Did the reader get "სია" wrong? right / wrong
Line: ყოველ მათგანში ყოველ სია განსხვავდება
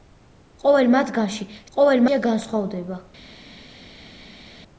right